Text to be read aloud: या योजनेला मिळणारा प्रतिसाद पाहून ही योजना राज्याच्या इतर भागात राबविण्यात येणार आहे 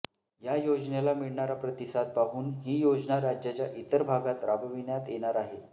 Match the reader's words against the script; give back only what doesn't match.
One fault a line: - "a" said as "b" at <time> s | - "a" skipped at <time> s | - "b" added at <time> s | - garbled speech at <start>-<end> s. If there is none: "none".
none